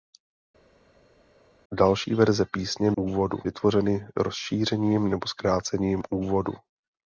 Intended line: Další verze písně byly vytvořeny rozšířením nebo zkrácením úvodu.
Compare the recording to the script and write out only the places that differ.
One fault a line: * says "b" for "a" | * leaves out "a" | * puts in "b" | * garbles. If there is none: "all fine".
* says "úvodu" for "byly"